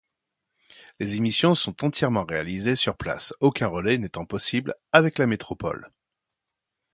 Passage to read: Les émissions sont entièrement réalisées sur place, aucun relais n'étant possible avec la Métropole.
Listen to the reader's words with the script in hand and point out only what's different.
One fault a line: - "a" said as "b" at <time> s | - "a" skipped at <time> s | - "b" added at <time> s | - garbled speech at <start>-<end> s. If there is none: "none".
none